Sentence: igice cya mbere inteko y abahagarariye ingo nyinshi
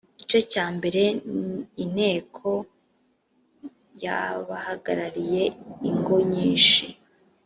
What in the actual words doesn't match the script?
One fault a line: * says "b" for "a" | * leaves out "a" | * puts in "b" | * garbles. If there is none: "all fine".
all fine